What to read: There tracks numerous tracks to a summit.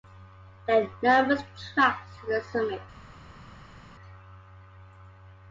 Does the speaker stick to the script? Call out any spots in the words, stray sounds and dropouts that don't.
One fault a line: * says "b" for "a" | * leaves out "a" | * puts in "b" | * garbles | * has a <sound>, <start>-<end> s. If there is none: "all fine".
* says "are" for "tracks"
* says "the" for "a"